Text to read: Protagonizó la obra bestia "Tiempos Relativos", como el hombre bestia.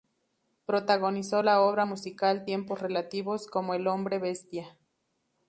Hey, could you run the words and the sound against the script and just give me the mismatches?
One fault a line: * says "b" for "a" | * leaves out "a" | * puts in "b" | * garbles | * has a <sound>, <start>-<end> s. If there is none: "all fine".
* says "musical" for "bestia"